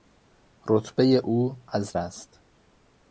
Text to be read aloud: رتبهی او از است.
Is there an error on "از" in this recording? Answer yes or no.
no